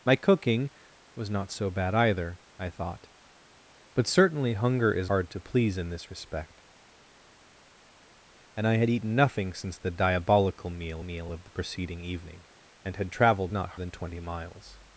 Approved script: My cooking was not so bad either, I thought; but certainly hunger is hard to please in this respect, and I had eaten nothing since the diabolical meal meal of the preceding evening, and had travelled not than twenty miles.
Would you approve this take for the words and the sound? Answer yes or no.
yes